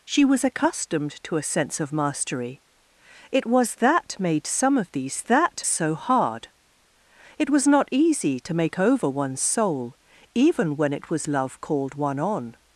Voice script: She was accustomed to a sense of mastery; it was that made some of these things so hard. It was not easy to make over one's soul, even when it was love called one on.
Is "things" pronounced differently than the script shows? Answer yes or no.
yes